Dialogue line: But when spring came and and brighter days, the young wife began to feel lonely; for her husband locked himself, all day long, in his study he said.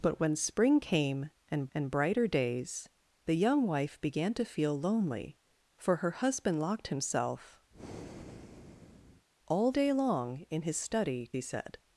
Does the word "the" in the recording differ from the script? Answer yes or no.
no